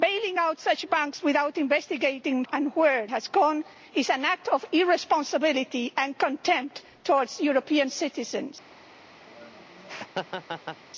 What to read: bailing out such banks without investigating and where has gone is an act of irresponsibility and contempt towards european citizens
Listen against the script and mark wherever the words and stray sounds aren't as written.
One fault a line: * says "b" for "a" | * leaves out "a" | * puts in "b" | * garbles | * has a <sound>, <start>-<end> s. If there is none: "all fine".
* has a laugh, 9.3-10.8 s